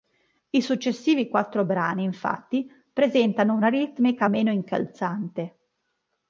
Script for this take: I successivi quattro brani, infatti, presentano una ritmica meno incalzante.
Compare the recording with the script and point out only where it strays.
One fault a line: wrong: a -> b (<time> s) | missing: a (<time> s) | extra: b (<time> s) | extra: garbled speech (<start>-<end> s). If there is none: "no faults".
no faults